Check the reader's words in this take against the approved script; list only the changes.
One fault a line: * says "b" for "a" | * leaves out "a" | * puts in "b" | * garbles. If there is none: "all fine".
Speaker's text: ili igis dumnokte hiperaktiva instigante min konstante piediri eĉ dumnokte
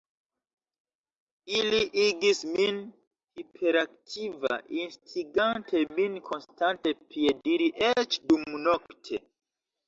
* says "min" for "dumnokte"